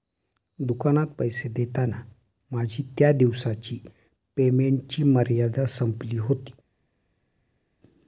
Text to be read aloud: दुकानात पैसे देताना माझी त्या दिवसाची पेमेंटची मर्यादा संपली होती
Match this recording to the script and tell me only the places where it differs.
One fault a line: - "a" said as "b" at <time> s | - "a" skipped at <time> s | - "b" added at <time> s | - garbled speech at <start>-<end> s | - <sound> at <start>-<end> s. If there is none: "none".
none